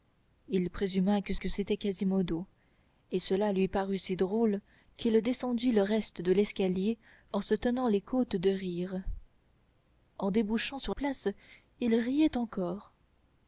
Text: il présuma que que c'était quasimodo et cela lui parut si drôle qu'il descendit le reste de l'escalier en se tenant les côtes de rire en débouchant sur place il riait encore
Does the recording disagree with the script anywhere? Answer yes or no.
no